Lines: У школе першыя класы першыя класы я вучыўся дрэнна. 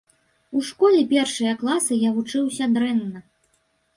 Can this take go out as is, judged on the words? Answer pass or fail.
fail